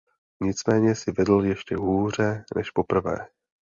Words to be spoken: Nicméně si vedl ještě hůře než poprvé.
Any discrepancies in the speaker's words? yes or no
no